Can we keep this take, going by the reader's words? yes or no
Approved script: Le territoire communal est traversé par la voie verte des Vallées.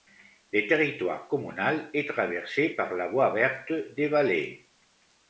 yes